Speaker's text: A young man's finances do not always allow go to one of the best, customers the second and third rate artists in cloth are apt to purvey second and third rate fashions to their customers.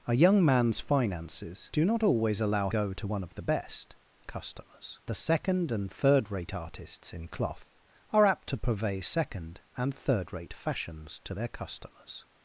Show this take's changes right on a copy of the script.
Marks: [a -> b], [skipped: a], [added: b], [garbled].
A young man's finances do not always allow go to one of the best, customers the second and third rate artists in cloth are apt to purvey second and third rate fashions to their customers.